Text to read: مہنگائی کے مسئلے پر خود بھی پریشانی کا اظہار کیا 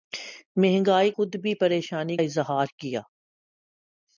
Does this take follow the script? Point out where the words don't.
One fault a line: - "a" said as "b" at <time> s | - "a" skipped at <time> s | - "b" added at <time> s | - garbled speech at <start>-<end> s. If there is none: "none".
- "کے مسئلے پر" skipped at 1.1 s
- "کا" skipped at 2.2 s